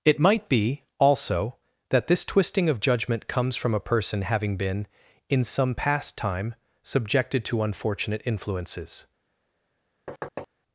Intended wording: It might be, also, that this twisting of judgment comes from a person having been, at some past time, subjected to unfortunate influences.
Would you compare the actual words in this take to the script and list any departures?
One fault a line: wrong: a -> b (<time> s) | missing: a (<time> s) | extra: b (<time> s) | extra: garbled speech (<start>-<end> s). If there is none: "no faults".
wrong: at -> in (5.3 s)